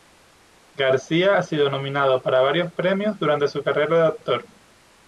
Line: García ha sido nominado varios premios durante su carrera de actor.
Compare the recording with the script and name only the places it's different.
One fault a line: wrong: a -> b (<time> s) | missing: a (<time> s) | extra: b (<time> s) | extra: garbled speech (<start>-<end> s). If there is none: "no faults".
extra: para (2.2 s)